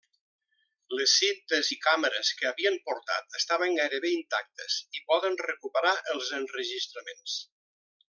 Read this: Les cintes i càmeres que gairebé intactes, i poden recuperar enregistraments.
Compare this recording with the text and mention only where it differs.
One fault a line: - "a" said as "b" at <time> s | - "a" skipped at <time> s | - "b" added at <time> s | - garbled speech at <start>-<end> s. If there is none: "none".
- "havien portat estaven" added at 2.5 s
- "els" added at 6.2 s